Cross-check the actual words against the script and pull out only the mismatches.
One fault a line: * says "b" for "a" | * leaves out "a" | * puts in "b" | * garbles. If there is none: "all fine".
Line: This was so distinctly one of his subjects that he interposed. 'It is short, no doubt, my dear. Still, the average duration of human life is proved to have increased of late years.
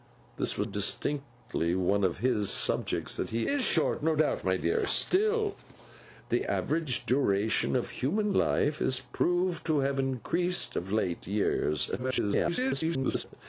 * leaves out "so"
* leaves out "interposed It"
* garbles